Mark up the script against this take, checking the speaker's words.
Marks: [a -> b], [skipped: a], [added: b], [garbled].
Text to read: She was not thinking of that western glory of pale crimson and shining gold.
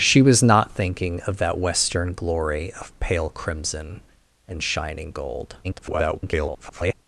She was not thinking of that western glory of pale crimson and shining gold. [garbled]